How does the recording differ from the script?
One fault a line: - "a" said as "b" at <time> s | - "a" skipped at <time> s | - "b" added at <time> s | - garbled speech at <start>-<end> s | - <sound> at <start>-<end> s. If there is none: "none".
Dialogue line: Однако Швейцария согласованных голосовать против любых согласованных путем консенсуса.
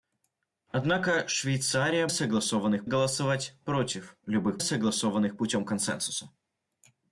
none